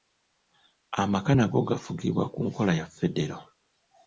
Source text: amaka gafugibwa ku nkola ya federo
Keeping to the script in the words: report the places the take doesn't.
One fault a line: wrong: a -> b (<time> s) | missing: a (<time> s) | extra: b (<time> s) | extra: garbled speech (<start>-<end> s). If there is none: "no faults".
extra: nago (1.4 s)